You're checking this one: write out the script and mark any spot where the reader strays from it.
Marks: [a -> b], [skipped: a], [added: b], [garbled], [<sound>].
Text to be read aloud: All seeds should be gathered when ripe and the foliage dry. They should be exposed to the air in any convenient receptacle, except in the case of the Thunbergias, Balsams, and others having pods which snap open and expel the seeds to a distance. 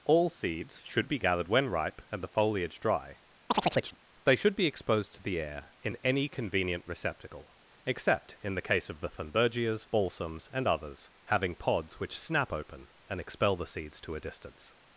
All seeds should be gathered when ripe and the foliage dry. [chirp] They should be exposed to the air in any convenient receptacle, except in the case of the Thunbergias, Balsams, and others having pods which snap open and expel the seeds to a distance.